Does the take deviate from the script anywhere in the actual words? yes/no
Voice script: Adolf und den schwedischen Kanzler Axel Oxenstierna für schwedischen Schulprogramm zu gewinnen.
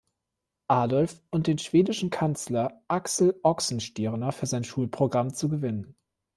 yes